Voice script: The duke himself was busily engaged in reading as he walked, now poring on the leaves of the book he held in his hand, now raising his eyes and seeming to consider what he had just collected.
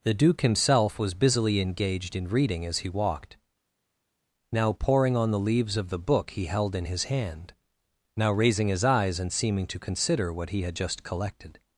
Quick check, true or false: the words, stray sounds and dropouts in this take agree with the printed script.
true